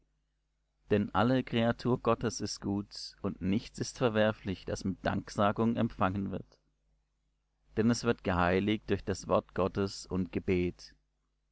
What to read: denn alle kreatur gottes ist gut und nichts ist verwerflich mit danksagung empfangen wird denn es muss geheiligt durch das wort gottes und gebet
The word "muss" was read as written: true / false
false